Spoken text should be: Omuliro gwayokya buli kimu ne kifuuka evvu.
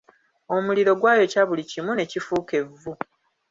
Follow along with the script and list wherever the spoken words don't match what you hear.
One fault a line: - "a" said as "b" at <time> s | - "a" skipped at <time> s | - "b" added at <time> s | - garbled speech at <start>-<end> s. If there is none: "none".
none